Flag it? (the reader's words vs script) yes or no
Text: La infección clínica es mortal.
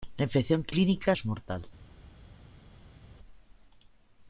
no